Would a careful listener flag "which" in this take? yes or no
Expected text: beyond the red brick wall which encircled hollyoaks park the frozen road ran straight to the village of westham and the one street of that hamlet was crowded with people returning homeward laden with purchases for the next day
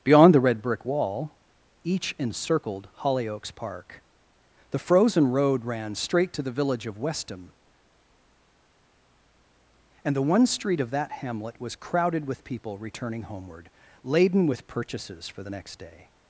yes